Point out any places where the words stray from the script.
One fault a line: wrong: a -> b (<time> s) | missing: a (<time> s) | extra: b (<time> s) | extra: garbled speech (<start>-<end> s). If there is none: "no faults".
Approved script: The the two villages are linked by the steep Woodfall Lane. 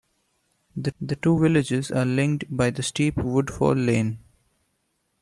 no faults